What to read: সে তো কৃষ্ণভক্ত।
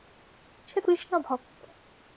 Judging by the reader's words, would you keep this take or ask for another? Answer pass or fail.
pass